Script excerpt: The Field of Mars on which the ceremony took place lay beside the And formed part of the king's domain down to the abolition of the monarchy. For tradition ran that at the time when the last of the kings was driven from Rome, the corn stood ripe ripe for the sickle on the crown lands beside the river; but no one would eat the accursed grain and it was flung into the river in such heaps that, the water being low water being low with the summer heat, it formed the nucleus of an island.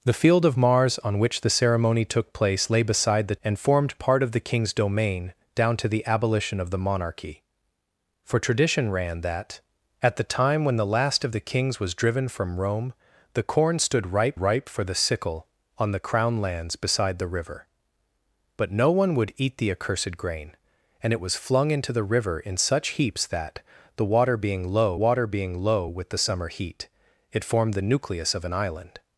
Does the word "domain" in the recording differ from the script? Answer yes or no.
no